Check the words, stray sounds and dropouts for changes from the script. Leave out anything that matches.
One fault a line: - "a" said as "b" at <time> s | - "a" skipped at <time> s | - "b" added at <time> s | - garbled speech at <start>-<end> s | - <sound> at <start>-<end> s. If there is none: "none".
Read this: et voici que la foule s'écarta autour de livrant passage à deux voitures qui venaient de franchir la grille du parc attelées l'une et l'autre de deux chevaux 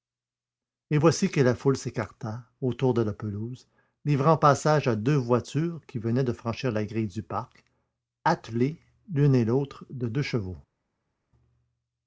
- "la pelouse" added at 3.0 s